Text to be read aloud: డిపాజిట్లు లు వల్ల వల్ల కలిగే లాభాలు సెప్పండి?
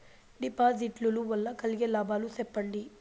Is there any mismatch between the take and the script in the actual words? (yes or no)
yes